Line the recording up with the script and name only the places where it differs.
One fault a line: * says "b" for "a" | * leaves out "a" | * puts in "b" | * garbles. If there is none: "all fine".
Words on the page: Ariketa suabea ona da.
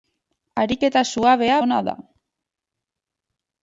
all fine